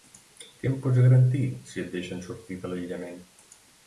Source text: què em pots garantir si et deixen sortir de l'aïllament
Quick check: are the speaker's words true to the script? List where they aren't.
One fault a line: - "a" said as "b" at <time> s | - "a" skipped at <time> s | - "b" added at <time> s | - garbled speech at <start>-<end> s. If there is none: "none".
none